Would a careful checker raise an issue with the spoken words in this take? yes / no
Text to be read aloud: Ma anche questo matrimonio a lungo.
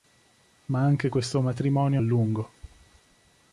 no